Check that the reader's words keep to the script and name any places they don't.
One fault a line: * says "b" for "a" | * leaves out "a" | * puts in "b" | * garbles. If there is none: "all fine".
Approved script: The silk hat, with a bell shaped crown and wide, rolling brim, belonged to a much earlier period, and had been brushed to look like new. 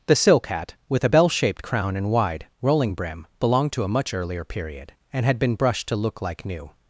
all fine